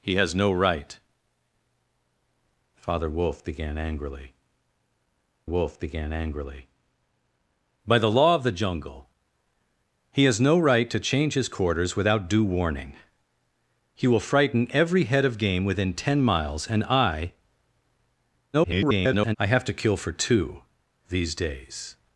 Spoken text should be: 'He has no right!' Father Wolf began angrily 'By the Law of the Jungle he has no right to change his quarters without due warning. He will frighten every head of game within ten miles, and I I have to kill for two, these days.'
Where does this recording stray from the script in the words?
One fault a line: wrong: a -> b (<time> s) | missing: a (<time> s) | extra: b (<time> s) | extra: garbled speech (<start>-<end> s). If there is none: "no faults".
extra: Wolf began angrily (5.4 s)
extra: garbled speech (18.5-19.4 s)